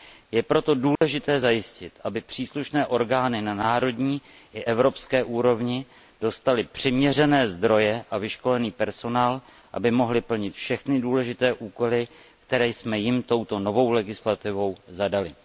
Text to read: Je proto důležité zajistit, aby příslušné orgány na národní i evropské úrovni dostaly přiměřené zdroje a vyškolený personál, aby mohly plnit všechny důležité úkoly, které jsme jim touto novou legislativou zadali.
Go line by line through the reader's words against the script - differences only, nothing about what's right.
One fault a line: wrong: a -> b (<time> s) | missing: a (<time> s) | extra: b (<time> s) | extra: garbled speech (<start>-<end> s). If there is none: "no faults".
no faults